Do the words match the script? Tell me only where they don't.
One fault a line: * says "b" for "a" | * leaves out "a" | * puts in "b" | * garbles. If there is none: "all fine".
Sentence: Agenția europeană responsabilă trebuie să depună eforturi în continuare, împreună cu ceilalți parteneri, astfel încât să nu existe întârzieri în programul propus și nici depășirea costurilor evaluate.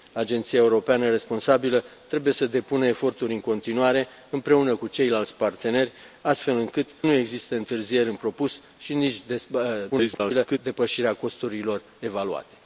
* leaves out "să"
* leaves out "programul"
* garbles